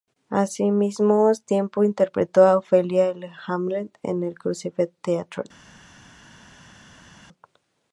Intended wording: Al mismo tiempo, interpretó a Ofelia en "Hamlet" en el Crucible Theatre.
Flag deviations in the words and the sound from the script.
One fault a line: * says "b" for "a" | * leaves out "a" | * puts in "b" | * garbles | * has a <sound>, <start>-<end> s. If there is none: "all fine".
all fine